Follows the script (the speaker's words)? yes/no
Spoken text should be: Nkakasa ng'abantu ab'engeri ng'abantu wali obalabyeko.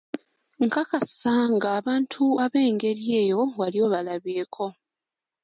no